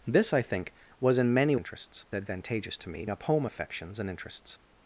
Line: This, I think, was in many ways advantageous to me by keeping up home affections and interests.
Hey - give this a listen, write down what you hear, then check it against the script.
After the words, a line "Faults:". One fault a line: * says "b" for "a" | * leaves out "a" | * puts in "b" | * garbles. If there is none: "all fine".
This, I think, was in many interests advantageous to me up home affections and interests.
Faults:
* says "interests" for "ways"
* leaves out "by keeping"